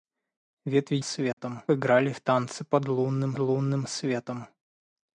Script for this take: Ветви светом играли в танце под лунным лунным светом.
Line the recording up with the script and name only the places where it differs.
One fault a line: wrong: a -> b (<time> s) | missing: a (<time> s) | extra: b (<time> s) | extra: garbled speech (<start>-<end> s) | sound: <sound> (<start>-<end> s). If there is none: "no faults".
sound: dropout (1.3-1.4 s)